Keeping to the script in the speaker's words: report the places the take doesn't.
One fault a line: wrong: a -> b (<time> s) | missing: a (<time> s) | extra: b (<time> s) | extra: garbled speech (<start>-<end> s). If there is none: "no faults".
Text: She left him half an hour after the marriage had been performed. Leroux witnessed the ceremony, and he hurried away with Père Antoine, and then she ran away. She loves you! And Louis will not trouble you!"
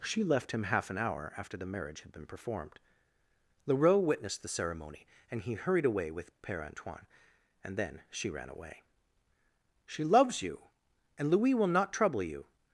no faults